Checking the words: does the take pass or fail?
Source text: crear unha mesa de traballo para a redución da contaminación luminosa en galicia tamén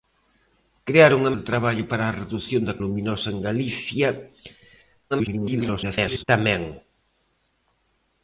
fail